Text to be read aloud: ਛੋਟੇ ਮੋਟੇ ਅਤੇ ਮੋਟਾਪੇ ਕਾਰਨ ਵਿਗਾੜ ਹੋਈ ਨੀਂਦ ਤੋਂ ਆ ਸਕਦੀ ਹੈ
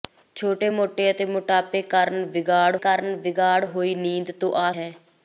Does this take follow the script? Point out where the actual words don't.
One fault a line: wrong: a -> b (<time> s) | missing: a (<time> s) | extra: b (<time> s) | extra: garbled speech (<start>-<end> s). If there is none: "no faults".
extra: ਕਾਰਨ ਵਿਗਾੜ (2.8 s)
missing: ਸਕਦੀ (4.7 s)